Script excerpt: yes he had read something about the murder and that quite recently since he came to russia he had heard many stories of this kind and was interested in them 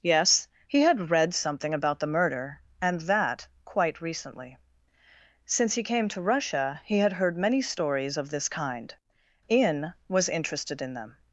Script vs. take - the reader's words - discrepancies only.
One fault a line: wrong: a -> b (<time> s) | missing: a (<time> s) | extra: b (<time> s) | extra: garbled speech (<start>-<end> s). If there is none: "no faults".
wrong: and -> in (9.5 s)